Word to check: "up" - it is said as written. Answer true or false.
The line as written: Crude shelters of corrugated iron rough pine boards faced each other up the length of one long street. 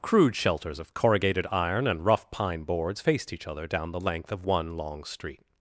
false